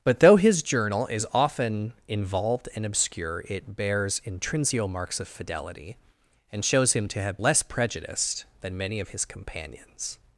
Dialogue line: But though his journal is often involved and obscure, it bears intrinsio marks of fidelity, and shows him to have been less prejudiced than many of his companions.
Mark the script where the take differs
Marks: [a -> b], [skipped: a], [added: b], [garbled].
But though his journal is often involved and obscure, it bears intrinsio marks of fidelity, and shows him to have [skipped: been] less prejudiced than many of his companions.